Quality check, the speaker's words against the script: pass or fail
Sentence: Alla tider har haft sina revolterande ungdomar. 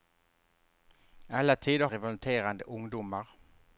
fail